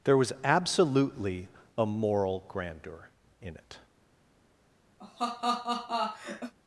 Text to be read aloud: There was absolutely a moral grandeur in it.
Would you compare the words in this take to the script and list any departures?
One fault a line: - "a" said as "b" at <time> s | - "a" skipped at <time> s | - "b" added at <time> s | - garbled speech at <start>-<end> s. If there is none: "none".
none